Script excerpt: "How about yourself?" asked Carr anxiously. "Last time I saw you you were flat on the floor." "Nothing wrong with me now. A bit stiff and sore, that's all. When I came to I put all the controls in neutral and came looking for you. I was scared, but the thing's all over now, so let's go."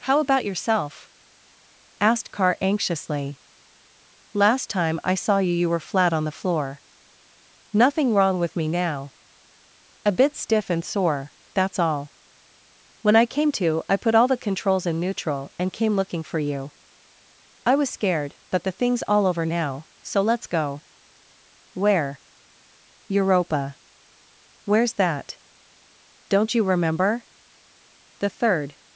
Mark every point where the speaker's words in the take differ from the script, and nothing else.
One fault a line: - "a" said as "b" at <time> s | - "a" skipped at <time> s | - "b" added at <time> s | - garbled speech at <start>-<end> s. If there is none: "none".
- "Where Europa Where's that Don't you remember The third" added at 21.7 s